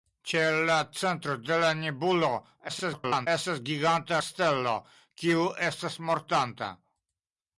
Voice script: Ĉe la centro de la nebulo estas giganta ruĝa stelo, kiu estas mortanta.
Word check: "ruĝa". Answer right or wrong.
wrong